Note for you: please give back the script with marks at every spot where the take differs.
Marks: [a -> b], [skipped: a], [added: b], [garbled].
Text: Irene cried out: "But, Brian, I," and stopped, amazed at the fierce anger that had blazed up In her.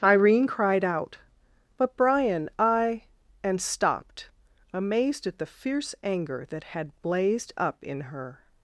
Irene cried out: "But, Brian, I," and stopped, amazed at the fierce anger that had blazed up In her.